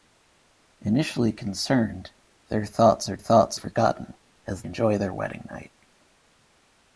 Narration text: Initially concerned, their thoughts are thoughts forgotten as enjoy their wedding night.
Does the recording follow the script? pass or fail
pass